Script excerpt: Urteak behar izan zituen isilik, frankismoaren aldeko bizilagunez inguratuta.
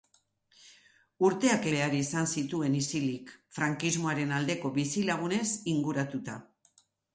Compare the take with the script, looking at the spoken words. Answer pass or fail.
pass